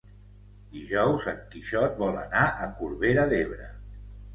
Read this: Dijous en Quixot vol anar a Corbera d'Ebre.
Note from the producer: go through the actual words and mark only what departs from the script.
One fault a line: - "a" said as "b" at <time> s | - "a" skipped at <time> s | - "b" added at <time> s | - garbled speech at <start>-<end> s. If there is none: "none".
none